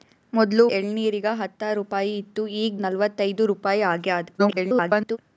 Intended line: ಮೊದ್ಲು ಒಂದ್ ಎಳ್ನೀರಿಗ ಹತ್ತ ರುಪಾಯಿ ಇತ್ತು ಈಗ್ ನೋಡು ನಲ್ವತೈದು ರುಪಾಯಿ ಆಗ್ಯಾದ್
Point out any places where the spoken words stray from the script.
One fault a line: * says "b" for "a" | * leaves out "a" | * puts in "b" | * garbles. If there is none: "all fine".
* leaves out "ಒಂದ್"
* leaves out "ನೋಡು"
* garbles